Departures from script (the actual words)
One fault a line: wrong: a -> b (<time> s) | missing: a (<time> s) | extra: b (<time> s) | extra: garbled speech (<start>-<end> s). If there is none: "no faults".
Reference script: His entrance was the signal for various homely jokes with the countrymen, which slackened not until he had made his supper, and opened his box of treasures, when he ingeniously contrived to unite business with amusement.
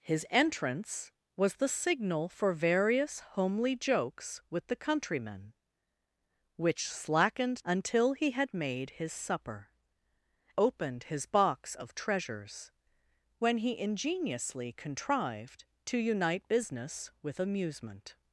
missing: not (7.6 s)
missing: and (9.7 s)